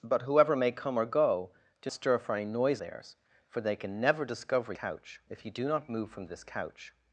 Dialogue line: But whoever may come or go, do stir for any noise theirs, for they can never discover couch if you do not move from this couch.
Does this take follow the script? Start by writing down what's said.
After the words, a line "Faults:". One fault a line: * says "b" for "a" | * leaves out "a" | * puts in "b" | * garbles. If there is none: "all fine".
But whoever may come or go, do stir for any noise theirs, for they can never discover couch if you do not move from this couch.
Faults:
all fine